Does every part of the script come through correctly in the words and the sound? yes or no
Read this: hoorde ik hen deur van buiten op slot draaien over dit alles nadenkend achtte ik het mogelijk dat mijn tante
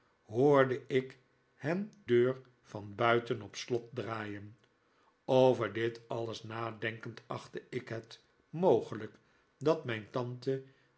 yes